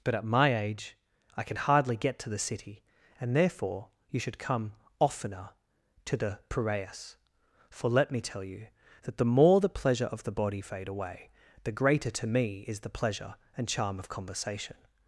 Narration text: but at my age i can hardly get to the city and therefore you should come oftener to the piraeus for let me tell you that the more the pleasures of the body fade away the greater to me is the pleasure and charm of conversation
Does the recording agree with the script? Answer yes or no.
no